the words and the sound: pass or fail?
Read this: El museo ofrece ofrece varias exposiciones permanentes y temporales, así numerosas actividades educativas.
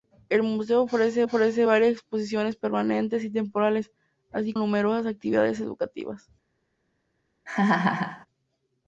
fail